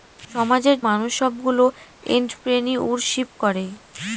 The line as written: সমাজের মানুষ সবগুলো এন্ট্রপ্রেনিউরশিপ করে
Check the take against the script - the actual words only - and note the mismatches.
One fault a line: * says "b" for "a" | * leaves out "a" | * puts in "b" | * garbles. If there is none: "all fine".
all fine